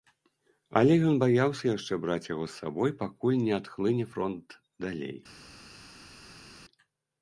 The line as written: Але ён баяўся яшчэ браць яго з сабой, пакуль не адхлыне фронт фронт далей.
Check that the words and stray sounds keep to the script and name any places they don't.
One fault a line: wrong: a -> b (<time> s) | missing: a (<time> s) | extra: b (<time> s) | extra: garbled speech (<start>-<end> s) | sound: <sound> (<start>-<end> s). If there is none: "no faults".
missing: фронт (4.6 s)